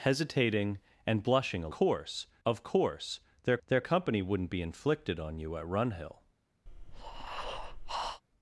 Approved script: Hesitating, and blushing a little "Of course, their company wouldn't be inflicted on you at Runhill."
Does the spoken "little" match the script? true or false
false